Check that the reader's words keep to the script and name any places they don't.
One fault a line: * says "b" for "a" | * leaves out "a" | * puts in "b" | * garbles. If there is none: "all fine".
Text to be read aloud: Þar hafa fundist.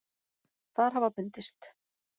all fine